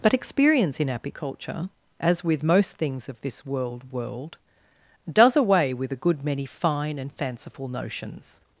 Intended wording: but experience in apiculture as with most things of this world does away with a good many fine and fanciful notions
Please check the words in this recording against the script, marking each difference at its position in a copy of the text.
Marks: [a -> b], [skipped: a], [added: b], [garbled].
but experience in apiculture as with most things of this world [added: world] does away with a good many fine and fanciful notions